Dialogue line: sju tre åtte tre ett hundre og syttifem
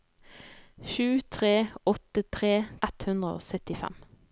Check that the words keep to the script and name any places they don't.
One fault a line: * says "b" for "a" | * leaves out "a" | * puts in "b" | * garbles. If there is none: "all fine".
all fine